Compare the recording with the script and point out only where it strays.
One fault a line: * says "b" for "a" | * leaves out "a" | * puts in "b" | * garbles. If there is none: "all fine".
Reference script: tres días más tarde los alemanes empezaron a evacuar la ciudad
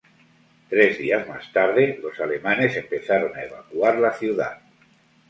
all fine